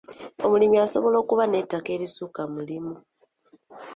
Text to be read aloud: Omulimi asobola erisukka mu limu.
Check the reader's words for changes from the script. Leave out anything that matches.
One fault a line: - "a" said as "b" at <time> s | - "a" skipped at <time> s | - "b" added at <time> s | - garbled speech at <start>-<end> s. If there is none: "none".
- "okuba n'ettaka" added at 1.2 s